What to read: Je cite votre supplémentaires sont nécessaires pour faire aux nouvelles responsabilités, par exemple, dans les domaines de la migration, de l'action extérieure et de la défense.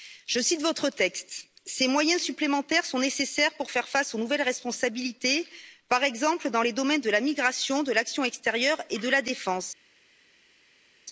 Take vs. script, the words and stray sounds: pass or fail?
fail